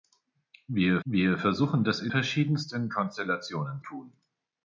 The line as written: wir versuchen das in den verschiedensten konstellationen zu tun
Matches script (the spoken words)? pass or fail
fail